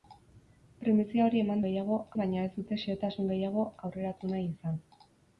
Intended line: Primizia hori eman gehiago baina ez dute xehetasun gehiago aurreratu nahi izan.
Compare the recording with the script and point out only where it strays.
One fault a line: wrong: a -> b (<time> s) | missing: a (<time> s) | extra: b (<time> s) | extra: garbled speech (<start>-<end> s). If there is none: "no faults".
no faults